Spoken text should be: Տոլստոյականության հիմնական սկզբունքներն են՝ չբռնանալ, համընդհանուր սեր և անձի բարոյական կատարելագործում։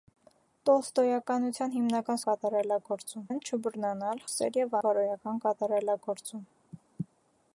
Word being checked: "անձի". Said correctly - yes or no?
no